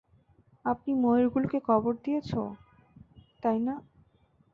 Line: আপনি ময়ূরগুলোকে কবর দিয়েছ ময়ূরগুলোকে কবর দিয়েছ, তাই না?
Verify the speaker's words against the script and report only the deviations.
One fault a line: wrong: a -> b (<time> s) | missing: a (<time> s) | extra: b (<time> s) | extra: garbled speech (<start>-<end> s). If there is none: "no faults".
missing: ময়ূরগুলোকে কবর দিয়েছ (2.3 s)